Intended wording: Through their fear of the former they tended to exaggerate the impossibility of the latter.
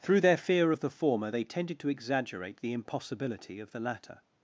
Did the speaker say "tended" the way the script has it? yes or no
yes